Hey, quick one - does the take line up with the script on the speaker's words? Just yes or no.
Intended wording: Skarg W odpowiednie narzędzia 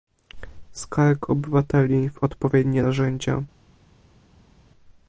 no